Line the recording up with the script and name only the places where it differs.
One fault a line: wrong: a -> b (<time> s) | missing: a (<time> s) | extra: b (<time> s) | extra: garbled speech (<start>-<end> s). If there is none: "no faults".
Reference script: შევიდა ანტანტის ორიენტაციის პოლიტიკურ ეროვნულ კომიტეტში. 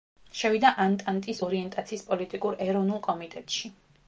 no faults